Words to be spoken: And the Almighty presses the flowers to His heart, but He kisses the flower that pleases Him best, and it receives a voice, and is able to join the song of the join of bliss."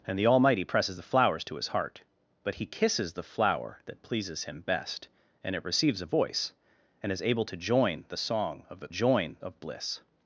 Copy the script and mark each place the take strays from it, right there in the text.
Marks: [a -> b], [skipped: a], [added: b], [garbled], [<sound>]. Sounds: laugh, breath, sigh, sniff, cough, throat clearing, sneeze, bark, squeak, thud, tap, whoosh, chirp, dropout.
And the Almighty presses the flowers to His heart, but He kisses the flower that pleases Him best, and it receives a voice, and is able to join the song of the join of bliss."